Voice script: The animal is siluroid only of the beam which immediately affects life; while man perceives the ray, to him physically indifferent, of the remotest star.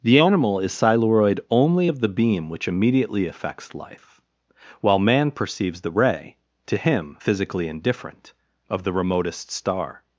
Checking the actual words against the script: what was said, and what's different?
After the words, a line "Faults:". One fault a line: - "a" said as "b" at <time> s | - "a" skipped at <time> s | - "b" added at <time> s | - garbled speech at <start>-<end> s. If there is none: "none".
The animal is siluroid only of the beam which immediately affects life; while man perceives the ray, to him physically indifferent, of the remotest star.
Faults:
none